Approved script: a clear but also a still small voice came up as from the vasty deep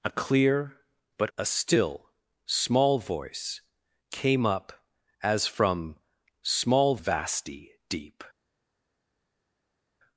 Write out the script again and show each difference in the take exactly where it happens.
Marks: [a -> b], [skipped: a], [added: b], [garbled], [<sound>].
a clear but [skipped: also] a still small voice came up as from [the -> small] vasty deep